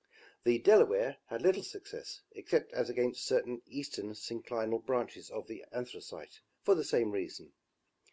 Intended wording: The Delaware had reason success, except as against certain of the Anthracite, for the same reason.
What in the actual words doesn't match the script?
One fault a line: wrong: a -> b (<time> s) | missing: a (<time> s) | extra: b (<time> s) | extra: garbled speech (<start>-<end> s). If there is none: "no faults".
wrong: reason -> little (1.4 s)
extra: eastern synclinal branches (3.7 s)